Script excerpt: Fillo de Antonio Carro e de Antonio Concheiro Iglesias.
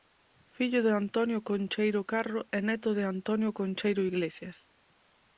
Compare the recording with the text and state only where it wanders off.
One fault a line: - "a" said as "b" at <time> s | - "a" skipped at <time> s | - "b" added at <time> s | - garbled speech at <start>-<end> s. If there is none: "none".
- "Concheiro" added at 1.5 s
- "neto" added at 2.7 s